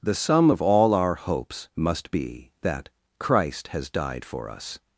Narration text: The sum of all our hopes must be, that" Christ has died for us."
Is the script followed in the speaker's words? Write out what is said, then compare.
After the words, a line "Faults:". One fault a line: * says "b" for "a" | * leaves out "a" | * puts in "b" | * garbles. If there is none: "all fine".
The sum of all our hopes must be, that" Christ has died for us."
Faults:
all fine